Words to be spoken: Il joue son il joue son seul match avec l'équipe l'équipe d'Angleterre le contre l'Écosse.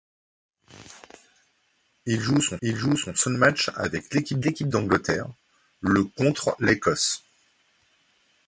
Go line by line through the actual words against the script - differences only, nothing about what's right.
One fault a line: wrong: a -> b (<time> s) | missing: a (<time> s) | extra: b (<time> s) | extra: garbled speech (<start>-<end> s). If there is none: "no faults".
no faults